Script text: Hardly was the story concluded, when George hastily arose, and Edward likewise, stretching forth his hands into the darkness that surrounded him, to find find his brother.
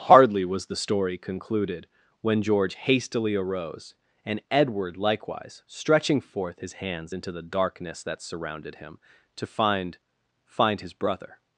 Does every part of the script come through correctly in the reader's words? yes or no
yes